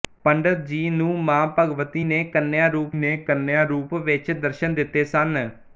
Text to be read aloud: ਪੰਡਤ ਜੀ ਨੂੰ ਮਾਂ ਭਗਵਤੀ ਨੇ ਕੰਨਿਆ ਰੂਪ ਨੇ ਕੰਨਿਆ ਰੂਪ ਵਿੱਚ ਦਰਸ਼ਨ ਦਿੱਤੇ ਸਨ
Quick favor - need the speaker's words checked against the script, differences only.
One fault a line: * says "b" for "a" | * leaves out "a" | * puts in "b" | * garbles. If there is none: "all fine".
all fine